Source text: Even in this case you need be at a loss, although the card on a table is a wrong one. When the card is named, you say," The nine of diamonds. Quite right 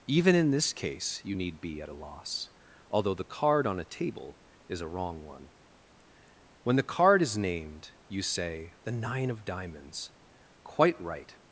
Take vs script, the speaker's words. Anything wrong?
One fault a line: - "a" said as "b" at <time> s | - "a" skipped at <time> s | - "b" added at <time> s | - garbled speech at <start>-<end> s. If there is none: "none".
none